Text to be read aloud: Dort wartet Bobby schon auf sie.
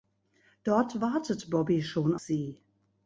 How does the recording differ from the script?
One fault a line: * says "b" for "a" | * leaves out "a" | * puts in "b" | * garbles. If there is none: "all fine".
* leaves out "auf"